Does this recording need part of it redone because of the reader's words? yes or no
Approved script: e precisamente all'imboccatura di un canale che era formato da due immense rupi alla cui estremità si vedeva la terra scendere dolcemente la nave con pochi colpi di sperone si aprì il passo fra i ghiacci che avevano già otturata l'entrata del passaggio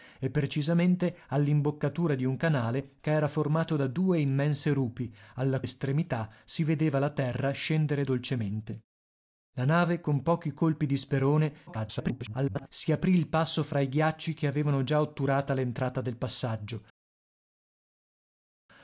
yes